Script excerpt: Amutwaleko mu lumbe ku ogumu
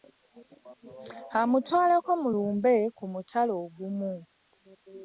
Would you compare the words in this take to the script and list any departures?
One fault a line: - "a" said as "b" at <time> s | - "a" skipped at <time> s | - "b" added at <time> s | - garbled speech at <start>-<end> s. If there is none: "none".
- "mutala" added at 3.1 s